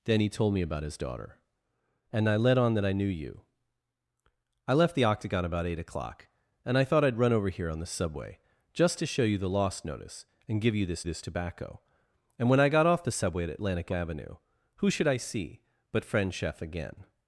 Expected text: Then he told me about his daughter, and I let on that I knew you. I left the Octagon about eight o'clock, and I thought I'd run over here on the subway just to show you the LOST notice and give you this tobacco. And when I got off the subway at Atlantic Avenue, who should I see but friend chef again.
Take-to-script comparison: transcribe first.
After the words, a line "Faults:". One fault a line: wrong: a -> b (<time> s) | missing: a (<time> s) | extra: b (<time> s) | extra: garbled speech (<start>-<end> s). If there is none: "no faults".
Then he told me about his daughter, and I let on that I knew you. I left the Octagon about eight o'clock, and I thought I'd run over here on the subway just to show you the LOST notice and give you this this tobacco. And when I got off the subway at Atlantic Avenue, who should I see but friend chef again.
Faults:
extra: this (11.0 s)